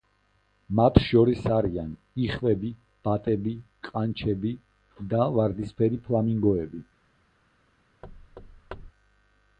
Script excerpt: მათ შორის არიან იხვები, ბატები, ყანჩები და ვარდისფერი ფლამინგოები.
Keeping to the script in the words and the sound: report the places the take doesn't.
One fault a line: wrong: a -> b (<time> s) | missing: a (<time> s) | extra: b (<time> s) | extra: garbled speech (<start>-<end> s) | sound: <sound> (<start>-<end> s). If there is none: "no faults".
sound: thud (8.0-8.9 s)